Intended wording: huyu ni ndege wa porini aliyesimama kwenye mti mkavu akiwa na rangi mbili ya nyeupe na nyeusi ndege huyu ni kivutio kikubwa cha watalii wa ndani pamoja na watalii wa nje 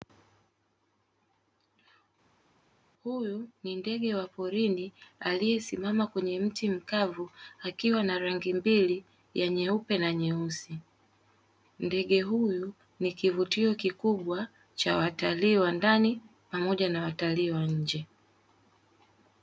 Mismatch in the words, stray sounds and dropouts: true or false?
false